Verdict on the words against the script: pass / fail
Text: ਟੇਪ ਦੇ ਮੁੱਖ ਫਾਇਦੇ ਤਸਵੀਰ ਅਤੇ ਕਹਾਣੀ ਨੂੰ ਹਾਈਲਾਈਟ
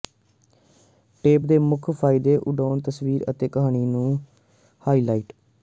fail